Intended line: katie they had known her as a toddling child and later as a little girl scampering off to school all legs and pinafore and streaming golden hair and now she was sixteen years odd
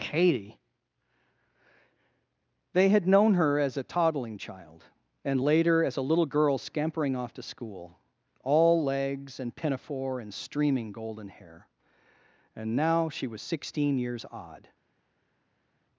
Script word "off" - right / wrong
right